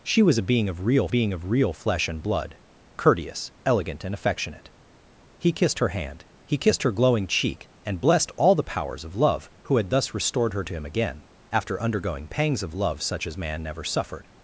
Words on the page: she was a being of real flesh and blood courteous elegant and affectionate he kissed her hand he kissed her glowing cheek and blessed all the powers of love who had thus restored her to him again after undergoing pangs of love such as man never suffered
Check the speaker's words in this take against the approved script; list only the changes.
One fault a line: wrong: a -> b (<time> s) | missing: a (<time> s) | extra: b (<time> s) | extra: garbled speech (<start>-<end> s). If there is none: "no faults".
extra: being of real (1.1 s)